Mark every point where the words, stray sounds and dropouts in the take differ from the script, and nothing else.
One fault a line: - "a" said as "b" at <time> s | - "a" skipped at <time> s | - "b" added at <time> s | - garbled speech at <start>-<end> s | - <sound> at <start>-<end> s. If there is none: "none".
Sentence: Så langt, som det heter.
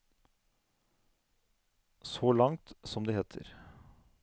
none